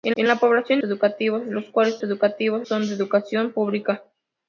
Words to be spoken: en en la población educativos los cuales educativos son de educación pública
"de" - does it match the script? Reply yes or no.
yes